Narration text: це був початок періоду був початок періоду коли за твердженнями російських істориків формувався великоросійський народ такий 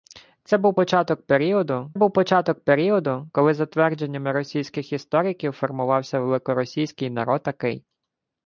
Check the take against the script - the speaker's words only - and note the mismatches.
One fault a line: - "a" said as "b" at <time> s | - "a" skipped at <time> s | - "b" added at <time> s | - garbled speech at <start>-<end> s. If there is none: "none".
none